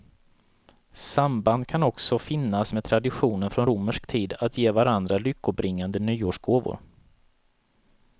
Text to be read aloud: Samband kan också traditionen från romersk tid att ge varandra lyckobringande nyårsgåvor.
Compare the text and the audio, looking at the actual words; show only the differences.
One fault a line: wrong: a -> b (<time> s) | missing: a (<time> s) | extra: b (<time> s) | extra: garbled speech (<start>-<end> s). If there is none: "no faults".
extra: finnas med (2.2 s)